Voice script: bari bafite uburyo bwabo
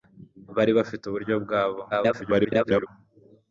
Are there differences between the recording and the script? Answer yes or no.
yes